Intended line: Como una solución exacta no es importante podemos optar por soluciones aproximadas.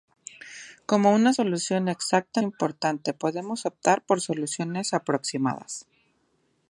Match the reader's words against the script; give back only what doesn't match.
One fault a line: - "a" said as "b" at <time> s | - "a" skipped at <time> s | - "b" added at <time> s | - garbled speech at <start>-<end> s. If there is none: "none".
- "no es" skipped at 2.4 s